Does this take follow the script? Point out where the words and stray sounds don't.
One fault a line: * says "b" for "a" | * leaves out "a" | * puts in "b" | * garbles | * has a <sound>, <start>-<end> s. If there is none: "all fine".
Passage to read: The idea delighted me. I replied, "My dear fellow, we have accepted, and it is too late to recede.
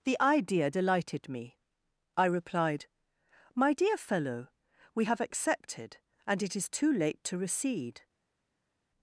all fine